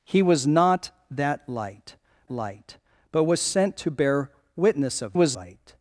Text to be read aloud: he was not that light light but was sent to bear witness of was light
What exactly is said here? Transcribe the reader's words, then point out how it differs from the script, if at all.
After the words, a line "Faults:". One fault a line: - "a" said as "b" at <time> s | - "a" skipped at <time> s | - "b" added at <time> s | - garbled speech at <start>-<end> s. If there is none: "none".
he was not that light light but was sent to bear witness of was light
Faults:
none